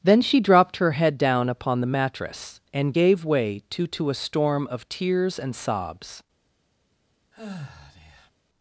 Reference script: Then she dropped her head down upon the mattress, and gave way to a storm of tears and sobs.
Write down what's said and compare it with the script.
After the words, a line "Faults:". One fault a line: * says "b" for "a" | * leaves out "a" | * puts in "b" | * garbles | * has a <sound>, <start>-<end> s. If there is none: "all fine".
Then she dropped her head down upon the mattress, and gave way to to a storm of tears and sobs.
Faults:
* puts in "to"
* has a sigh, 7.3-8.3 s